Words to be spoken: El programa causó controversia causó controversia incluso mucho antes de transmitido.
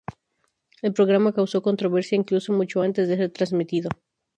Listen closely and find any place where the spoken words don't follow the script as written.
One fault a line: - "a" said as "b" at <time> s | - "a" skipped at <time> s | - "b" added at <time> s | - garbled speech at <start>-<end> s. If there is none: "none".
- "causó controversia" skipped at 2.2 s
- "ser" added at 3.2 s